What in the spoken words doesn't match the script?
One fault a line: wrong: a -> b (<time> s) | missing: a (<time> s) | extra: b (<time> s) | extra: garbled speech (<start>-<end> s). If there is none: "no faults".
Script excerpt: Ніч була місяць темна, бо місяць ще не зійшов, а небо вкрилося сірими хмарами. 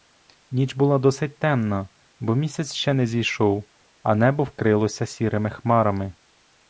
wrong: місяць -> досить (1.0 s)